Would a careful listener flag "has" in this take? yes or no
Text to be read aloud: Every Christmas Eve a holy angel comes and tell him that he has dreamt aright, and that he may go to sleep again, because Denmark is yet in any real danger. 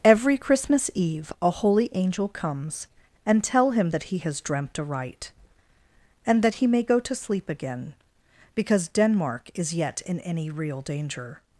no